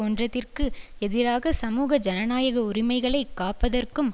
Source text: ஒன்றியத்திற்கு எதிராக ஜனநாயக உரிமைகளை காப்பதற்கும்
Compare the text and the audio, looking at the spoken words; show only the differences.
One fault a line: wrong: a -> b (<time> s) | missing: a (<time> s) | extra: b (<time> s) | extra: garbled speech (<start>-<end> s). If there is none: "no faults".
extra: சமூக (1.5 s)